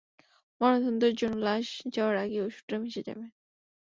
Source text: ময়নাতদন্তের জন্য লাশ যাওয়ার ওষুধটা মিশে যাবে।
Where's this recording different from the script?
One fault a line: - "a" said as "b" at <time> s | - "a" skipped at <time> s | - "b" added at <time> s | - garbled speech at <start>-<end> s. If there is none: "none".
- "আগেই" added at 2.2 s